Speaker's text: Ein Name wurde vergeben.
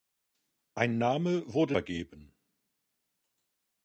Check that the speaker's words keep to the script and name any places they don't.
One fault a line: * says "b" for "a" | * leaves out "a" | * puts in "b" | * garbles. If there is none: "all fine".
all fine